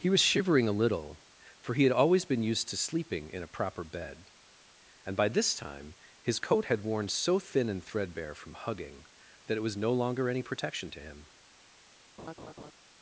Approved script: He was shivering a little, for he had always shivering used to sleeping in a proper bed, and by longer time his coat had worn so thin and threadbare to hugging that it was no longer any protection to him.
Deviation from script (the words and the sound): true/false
true